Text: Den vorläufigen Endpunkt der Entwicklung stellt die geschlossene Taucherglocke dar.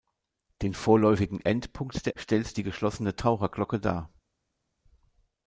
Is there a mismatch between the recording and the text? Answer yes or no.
yes